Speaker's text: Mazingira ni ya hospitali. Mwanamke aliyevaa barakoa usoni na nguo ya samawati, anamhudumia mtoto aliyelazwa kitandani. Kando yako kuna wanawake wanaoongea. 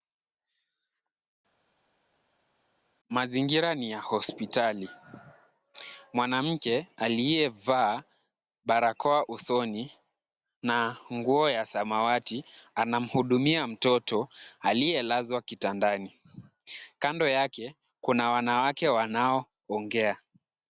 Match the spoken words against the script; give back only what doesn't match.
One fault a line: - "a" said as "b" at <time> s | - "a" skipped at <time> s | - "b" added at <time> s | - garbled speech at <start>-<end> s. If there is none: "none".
- "yako" said as "yake" at 17.3 s